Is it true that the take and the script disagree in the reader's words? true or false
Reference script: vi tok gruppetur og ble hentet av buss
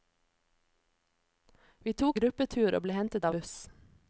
false